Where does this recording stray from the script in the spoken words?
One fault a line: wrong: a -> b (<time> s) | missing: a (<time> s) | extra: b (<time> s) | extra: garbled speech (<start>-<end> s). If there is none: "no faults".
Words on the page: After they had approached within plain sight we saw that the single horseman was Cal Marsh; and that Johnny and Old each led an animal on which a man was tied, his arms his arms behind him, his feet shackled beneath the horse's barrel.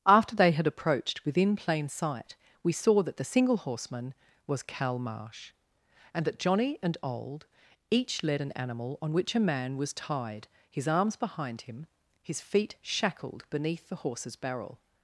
missing: his arms (11.2 s)